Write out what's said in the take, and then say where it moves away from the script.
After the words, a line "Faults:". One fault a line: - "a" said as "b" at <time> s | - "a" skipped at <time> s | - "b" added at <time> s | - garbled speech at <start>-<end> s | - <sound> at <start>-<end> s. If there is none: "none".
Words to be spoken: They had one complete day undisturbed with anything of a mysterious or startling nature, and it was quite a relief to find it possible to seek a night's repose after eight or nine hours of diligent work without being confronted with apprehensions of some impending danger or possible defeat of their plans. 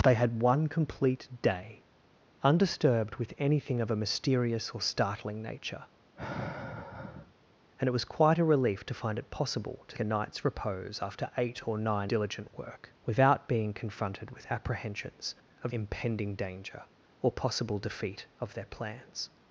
They had one complete day undisturbed with anything of a mysterious or startling nature, and it was quite a relief to find it possible to a night's repose after eight or nine diligent work without being confronted with apprehensions of impending danger or possible defeat of their plans.
Faults:
- sigh at 6.2-7.3 s
- "seek" skipped at 10.0 s
- "hours of" skipped at 12.1 s
- "some" skipped at 15.7 s